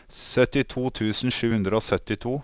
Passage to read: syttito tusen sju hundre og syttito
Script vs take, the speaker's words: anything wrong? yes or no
no